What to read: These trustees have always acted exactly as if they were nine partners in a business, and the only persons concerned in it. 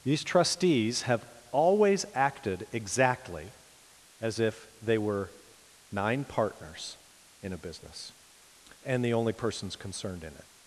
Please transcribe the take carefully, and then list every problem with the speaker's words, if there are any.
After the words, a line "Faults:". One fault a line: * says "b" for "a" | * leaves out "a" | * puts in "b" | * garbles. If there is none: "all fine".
These trustees have always acted exactly as if they were nine partners in a business, and the only persons concerned in it.
Faults:
all fine